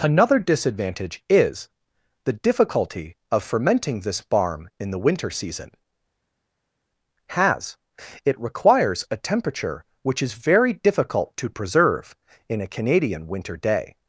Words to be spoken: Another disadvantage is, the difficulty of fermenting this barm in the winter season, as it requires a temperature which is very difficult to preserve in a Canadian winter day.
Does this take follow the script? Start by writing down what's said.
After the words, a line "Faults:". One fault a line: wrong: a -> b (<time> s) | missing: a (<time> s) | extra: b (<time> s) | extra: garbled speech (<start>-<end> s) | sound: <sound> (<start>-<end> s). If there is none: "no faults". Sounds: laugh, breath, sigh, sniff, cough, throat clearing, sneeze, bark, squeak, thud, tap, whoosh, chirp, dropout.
Another disadvantage is, the difficulty of fermenting this barm in the winter season, has it requires a temperature which is very difficult to preserve in a Canadian winter day.
Faults:
wrong: as -> has (7.3 s)